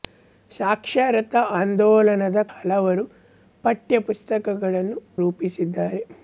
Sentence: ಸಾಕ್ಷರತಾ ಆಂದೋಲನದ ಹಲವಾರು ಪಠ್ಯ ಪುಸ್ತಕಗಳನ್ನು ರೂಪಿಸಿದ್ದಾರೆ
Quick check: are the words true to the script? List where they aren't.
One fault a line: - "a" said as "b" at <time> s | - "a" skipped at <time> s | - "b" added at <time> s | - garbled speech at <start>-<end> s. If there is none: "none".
none